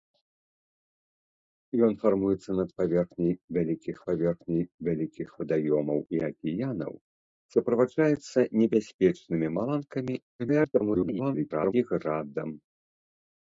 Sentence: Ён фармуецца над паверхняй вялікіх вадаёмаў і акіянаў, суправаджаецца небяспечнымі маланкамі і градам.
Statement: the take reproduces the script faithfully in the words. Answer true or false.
false